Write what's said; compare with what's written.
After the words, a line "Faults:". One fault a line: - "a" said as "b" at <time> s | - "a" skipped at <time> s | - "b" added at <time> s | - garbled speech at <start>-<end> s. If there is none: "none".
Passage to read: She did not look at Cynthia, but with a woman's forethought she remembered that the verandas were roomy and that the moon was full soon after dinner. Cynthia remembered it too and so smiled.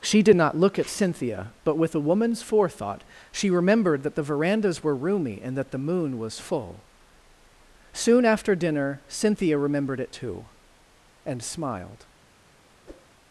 She did not look at Cynthia, but with a woman's forethought she remembered that the verandas were roomy and that the moon was full soon after dinner. Cynthia remembered it too and smiled.
Faults:
- "so" skipped at 11.4 s